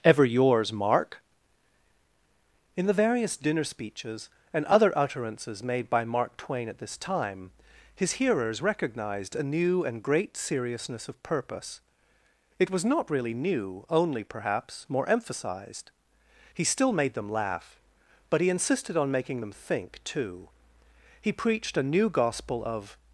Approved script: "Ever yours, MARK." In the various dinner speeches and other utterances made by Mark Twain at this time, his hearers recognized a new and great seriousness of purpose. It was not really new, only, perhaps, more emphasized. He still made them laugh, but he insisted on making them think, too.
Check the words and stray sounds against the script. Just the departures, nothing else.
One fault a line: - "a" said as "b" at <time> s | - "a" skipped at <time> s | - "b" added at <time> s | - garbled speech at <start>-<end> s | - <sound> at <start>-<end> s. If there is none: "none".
- "He preached a new gospel of" added at 21.2 s